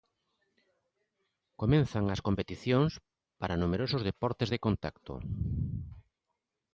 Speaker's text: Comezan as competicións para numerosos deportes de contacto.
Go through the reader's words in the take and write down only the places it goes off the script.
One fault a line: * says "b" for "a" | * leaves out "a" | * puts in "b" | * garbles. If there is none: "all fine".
all fine